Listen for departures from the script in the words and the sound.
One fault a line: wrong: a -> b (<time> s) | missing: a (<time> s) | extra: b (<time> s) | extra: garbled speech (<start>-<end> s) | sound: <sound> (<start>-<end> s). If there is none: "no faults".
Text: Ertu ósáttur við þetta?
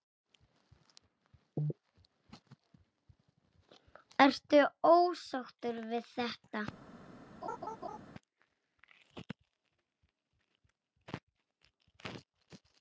sound: laugh (7.4-8.0 s)